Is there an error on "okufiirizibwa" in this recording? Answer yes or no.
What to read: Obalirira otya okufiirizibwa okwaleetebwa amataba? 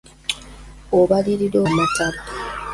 yes